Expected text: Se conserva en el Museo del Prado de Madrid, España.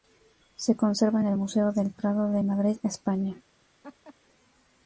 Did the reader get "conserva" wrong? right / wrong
right